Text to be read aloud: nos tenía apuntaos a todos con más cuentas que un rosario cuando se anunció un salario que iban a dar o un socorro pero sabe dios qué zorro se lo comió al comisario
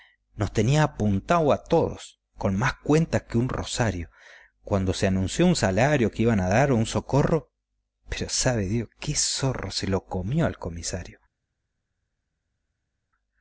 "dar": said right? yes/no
yes